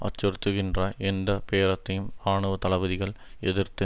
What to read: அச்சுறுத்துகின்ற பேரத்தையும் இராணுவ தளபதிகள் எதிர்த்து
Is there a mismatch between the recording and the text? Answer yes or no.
yes